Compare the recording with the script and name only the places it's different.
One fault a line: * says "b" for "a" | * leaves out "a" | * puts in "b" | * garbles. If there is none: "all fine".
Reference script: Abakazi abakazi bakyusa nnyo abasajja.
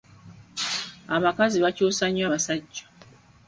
* leaves out "abakazi"